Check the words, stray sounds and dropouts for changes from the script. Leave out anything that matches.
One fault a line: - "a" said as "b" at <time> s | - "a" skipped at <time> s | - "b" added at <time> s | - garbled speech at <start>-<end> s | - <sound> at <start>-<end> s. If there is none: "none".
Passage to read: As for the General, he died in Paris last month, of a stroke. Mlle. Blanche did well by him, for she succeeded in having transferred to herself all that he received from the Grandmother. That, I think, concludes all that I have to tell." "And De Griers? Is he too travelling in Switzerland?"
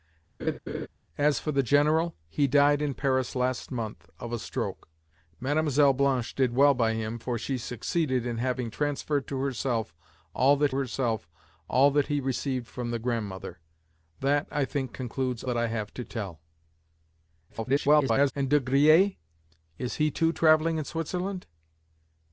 - laugh at 0.4-0.9 s
- "herself all that" added at 10.7 s
- "all" skipped at 15.4 s
- garbled speech at 17.5-18.3 s